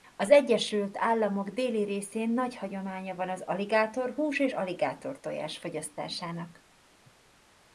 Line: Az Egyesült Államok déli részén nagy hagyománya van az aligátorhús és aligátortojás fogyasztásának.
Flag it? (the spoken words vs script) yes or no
no